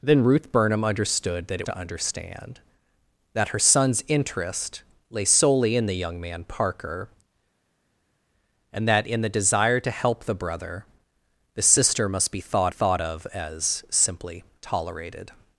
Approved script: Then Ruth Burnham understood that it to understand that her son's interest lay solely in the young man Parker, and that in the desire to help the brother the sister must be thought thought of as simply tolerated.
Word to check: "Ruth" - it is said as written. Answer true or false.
true